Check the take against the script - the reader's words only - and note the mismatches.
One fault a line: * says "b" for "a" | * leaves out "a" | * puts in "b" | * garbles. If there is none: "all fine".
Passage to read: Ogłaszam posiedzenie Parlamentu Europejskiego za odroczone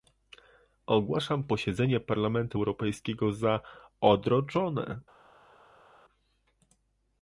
all fine